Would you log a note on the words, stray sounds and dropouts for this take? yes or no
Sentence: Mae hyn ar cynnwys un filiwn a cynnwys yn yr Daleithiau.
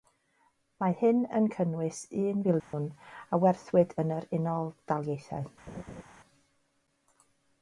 yes